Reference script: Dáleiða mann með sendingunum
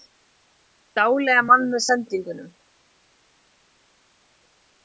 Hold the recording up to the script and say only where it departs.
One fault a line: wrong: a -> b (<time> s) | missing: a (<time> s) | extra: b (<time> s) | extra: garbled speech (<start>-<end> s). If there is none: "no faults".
no faults